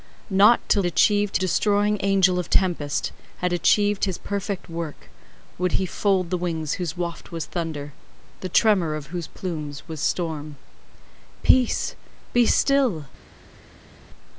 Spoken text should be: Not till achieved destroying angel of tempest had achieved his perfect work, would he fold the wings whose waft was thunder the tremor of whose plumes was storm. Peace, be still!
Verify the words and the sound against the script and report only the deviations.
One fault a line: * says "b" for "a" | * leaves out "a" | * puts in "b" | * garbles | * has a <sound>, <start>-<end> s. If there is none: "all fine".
all fine